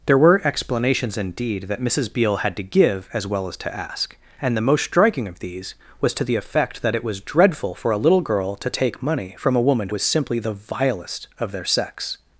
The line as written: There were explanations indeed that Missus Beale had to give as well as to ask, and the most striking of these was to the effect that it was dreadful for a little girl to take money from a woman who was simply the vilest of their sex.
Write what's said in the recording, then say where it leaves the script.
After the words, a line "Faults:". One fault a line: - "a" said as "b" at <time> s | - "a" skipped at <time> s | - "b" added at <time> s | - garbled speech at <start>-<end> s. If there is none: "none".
There were explanations indeed that Missus Beale had to give as well as to ask, and the most striking of these was to the effect that it was dreadful for a little girl to take money from a woman was simply the vilest of their sex.
Faults:
- "who" skipped at 9.9 s